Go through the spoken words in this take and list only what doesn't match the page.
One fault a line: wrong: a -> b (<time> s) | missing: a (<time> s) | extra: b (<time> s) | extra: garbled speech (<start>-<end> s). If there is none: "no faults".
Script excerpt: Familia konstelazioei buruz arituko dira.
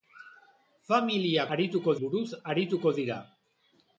wrong: konstelazioei -> arituko (1.6 s)